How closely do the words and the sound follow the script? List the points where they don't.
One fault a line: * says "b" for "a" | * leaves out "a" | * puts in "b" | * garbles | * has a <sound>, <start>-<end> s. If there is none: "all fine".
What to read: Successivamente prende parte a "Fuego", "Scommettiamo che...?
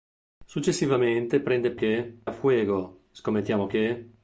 * says "che" for "parte"